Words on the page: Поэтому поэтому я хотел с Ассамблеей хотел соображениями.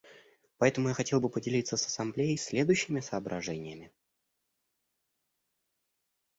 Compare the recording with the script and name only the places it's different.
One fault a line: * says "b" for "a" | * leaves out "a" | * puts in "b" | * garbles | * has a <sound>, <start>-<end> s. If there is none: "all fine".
* leaves out "поэтому"
* puts in "бы поделиться"
* says "следующими" for "хотел"